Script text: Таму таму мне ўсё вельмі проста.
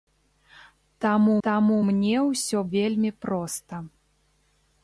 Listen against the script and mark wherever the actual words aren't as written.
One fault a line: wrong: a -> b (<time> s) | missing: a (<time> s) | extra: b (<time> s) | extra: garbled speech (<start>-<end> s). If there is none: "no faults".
no faults